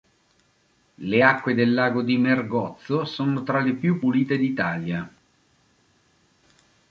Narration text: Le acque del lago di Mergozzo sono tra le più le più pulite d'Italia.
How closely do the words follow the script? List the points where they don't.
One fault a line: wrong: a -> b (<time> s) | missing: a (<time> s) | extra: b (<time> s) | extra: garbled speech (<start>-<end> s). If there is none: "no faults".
missing: le più (4.0 s)